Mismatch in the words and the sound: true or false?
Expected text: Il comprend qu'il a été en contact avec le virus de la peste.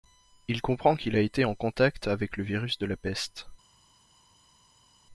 false